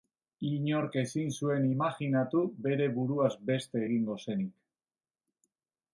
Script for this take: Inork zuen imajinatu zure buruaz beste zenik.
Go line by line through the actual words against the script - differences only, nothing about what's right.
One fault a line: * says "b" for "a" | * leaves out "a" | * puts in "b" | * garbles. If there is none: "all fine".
* puts in "ezin"
* says "bere" for "zure"
* puts in "egingo"